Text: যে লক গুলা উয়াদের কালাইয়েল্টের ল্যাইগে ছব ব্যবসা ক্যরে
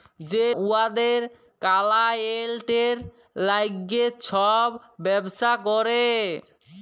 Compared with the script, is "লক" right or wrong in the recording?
wrong